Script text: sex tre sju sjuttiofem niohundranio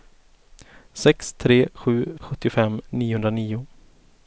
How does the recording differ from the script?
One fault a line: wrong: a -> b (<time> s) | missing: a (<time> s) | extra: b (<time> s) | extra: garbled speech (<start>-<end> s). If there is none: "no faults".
no faults